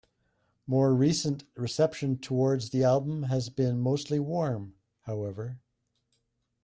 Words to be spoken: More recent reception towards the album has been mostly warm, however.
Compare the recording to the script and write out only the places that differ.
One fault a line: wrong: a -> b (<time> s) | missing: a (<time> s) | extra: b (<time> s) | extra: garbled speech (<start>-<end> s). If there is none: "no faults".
no faults